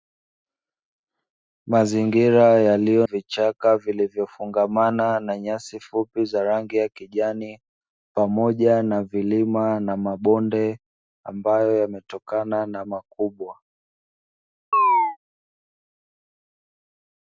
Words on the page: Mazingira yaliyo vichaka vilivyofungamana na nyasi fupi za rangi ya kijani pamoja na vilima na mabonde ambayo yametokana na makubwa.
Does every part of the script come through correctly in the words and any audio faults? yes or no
no